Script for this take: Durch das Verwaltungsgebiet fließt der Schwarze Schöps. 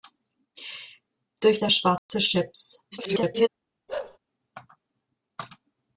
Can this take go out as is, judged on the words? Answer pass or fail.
fail